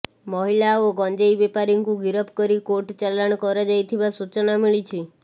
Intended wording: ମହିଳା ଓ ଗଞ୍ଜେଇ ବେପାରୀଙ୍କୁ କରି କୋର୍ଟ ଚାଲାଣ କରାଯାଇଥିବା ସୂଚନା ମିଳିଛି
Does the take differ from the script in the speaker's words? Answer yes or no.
yes